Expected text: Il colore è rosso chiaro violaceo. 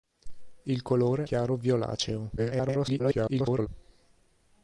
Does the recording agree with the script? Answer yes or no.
no